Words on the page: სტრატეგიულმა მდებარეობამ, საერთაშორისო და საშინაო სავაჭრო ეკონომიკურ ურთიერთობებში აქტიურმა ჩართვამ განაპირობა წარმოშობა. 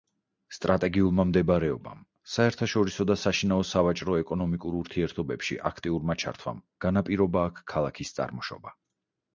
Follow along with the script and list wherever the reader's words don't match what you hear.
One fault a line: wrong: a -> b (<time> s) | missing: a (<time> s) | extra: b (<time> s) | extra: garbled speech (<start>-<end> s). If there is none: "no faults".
extra: აქ ქალაქის (7.5 s)